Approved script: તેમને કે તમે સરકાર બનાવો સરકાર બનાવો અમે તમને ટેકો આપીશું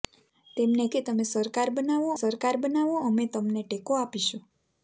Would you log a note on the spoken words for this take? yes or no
no